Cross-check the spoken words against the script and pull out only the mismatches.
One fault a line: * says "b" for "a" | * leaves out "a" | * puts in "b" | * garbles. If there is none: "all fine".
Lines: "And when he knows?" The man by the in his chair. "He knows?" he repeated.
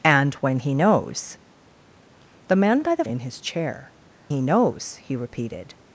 all fine